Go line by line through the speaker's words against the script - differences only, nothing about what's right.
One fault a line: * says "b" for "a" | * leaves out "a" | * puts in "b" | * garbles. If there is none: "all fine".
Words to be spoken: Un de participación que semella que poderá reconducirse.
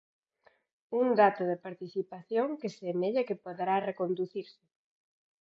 * puts in "dato"